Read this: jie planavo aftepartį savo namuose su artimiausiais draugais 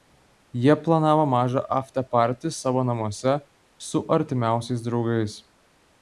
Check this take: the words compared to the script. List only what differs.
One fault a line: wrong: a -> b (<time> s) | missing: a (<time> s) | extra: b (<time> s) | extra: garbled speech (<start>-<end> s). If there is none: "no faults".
extra: mažą (1.3 s)